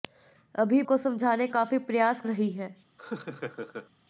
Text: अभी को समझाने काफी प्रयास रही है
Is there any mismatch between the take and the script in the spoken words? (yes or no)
no